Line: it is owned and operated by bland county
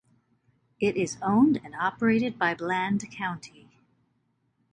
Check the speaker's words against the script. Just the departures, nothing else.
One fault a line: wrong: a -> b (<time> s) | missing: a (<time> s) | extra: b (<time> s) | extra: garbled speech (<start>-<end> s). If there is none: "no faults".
no faults